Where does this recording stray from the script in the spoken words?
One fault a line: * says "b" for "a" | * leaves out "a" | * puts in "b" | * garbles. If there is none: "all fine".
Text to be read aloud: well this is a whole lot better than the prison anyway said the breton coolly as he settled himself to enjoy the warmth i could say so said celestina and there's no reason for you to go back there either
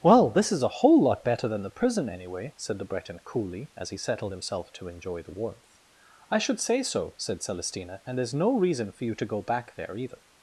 * says "should" for "could"